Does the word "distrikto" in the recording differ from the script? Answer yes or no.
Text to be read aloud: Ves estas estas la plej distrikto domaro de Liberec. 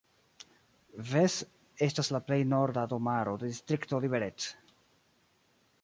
yes